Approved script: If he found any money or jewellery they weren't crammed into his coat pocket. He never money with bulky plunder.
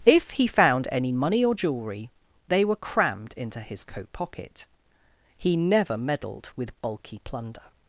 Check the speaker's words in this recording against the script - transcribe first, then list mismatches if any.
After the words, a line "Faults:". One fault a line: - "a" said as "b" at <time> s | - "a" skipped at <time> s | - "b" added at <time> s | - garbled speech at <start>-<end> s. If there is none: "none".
If he found any money or jewellery they were crammed into his coat pocket. He never meddled with bulky plunder.
Faults:
- "weren't" said as "were" at 2.6 s
- "money" said as "meddled" at 6.0 s